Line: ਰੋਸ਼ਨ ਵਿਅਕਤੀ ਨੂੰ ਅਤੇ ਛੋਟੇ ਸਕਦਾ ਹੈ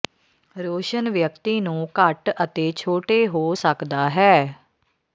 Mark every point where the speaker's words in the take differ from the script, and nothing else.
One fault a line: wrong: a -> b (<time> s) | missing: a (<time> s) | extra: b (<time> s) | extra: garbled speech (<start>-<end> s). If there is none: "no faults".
extra: ਘੱਟ (2.0 s)
extra: ਹੋ (3.3 s)